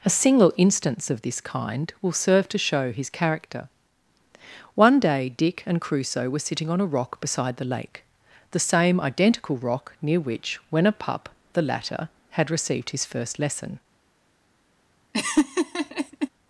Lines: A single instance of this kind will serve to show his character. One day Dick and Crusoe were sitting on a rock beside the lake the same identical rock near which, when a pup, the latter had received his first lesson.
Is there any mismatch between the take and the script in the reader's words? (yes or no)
no